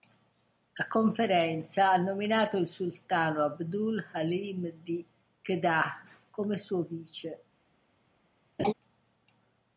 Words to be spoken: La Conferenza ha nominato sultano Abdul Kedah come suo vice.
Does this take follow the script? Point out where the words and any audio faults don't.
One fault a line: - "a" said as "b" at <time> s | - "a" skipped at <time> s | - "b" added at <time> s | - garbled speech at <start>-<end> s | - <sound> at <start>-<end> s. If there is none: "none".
- "il" added at 2.6 s
- "Halim di" added at 4.1 s
- laugh at 8.6-8.7 s